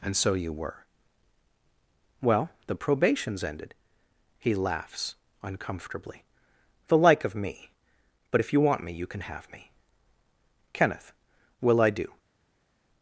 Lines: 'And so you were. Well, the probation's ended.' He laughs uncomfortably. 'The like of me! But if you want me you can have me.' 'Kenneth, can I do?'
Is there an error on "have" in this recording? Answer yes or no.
no